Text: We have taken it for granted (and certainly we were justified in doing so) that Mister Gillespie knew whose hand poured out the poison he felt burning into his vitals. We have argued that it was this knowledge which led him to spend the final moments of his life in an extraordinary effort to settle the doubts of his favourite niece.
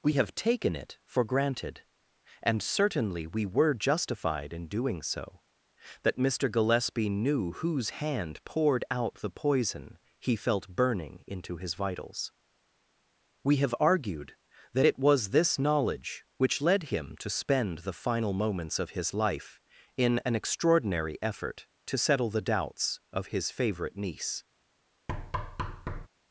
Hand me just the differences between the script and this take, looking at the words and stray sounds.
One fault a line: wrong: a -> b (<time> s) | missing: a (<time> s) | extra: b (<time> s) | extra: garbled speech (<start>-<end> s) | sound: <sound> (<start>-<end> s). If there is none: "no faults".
sound: thud (25.1-26.1 s)